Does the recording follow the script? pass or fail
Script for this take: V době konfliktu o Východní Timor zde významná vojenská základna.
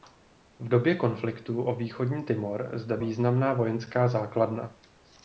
pass